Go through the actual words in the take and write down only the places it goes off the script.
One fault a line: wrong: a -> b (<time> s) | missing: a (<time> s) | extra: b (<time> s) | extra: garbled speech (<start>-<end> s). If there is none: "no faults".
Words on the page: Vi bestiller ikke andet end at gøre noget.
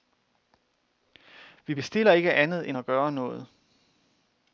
no faults